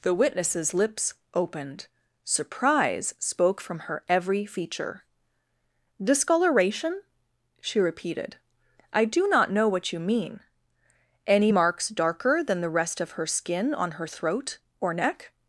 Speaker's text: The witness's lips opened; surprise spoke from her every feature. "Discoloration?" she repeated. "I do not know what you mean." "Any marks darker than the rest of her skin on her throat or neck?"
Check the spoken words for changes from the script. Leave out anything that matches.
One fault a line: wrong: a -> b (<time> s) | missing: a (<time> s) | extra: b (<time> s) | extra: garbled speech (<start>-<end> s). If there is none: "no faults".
no faults